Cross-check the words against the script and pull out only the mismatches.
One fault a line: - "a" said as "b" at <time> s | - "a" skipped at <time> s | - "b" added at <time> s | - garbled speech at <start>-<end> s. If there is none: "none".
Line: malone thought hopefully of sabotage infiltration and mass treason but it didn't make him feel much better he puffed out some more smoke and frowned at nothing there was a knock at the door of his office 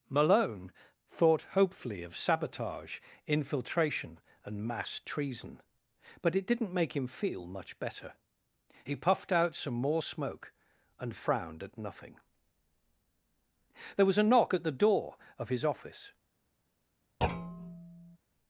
none